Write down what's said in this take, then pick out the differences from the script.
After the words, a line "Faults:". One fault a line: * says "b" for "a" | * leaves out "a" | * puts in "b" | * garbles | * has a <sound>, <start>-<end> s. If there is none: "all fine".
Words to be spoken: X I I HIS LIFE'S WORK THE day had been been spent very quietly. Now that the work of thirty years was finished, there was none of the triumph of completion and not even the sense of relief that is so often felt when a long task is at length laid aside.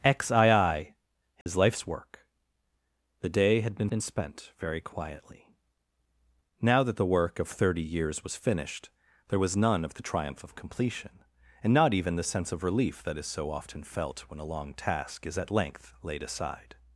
X I I HIS LIFE'S WORK THE day had been been spent very quietly. Now that the work of thirty years was finished, there was none of the triumph of completion and not even the sense of relief that is so often felt when a long task is at length laid aside.
Faults:
* has a dropout, 1.4-1.5 s